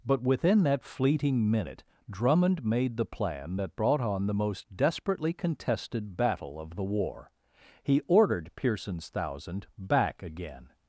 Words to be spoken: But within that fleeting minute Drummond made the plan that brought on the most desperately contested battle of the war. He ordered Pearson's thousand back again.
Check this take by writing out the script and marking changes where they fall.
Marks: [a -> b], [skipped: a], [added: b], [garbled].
But within that fleeting minute Drummond made the plan that brought on the most desperately contested battle of the war. He ordered Pearson's thousand back again.